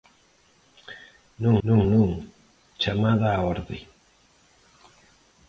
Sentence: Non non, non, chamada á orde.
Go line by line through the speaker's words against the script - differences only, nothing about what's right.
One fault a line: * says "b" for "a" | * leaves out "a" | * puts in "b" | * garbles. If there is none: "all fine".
all fine